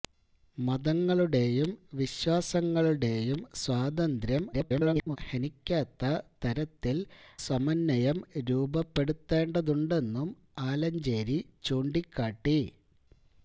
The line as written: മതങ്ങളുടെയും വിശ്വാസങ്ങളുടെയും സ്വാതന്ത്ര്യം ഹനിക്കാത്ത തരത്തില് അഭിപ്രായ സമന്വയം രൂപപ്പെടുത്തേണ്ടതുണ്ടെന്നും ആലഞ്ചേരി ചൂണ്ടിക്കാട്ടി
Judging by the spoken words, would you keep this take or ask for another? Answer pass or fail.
fail